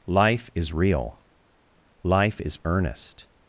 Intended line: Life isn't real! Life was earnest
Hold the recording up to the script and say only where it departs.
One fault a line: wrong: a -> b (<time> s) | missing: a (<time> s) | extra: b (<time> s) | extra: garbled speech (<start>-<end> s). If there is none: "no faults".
wrong: isn't -> is (0.6 s)
wrong: was -> is (2.4 s)